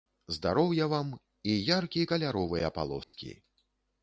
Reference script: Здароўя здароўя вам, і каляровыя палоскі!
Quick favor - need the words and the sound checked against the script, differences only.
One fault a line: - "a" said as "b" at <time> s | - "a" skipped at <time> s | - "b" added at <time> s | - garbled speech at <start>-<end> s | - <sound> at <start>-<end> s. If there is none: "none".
- "здароўя" skipped at 0.9 s
- "яркі" added at 1.8 s
- dropout at 3.0-3.1 s